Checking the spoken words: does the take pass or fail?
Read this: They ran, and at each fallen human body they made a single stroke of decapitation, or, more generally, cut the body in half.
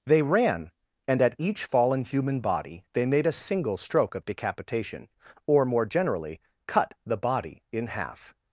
pass